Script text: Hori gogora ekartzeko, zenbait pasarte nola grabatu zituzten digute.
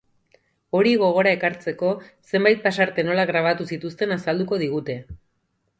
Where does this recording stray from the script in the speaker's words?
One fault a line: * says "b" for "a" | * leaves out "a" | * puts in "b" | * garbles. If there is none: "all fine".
* puts in "azalduko"